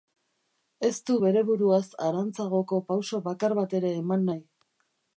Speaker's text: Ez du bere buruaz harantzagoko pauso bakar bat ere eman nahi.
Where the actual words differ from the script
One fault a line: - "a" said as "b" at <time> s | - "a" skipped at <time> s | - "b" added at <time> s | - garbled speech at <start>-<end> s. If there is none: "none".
none